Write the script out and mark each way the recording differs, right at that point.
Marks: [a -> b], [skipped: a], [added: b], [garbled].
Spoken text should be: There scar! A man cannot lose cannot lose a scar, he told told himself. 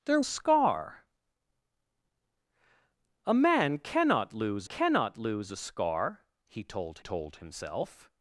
There scar! A man cannot lose cannot lose a scar, he told told himself.